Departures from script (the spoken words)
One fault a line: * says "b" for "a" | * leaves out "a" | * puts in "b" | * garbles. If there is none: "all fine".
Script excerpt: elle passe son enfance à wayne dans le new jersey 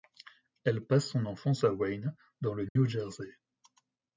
all fine